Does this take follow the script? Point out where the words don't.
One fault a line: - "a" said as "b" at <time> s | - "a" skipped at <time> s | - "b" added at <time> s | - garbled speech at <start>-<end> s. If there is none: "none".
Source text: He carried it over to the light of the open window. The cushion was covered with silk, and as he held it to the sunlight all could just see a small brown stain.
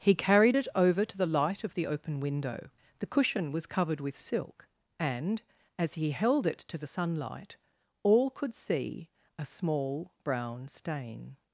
- "just" skipped at 8.5 s